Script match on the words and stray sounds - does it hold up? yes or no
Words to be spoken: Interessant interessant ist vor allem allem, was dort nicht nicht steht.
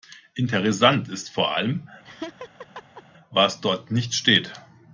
no